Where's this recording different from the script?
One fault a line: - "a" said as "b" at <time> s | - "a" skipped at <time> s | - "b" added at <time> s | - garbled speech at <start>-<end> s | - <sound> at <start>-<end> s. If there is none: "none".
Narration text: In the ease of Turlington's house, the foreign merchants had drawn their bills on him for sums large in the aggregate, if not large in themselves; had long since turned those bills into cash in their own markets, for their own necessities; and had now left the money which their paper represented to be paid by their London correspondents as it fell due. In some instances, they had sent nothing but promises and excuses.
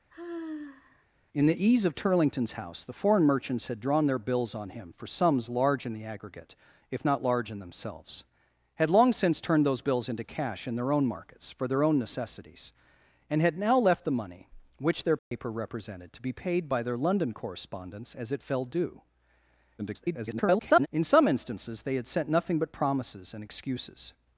- sigh at 0.1-1.1 s
- dropout at 15.2-15.3 s
- garbled speech at 19.8-20.9 s